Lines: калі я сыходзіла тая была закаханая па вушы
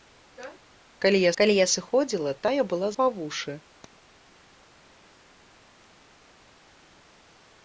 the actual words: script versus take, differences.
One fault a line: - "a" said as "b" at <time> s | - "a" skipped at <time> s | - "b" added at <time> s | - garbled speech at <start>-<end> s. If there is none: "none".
- "калі я" added at 1.4 s
- "закаханая" skipped at 2.9 s